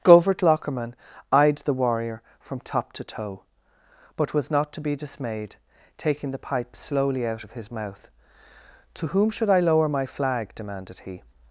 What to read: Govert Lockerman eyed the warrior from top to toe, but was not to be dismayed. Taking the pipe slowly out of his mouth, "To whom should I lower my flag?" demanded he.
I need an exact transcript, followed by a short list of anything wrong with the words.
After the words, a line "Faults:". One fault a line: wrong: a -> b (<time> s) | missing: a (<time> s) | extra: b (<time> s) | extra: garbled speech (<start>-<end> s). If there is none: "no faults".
Govert Lockerman eyed the warrior from top to toe, but was not to be dismayed. Taking the pipe slowly out of his mouth, "To whom should I lower my flag?" demanded he.
Faults:
no faults